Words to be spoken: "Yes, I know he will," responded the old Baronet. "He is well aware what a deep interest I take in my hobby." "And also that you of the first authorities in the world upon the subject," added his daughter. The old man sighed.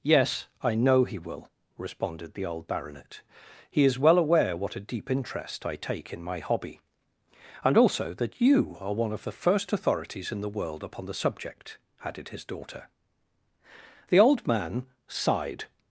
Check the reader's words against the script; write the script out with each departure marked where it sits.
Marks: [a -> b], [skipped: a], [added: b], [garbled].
"Yes, I know he will," responded the old Baronet. "He is well aware what a deep interest I take in my hobby." "And also that you [added: are one] of the first authorities in the world upon the subject," added his daughter. The old man sighed.